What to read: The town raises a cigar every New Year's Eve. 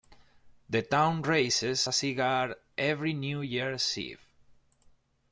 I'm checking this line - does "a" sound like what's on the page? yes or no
yes